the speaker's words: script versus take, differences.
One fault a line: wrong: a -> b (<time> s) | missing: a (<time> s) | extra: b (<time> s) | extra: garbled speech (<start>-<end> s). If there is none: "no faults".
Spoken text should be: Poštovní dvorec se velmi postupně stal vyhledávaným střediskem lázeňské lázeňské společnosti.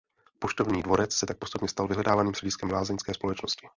wrong: velmi -> tak (1.2 s)
missing: lázeňské (3.1 s)